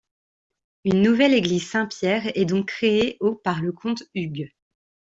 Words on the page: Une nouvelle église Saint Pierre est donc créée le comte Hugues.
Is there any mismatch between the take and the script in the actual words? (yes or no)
yes